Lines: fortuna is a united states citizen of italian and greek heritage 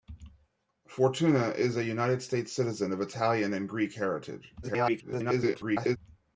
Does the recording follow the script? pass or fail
fail